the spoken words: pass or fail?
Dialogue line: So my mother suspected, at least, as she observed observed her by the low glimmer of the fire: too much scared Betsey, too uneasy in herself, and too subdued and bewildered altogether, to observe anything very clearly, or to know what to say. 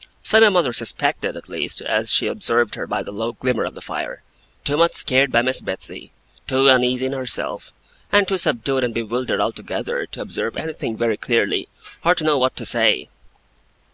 fail